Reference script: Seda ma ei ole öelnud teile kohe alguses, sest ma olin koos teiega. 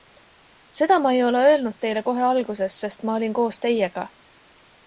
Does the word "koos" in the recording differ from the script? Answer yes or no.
no